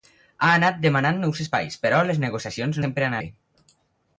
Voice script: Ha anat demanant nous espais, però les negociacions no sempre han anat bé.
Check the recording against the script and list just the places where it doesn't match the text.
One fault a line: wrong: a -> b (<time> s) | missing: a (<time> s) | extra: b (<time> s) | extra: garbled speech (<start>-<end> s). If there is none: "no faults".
missing: no (2.8 s)
missing: anat (3.2 s)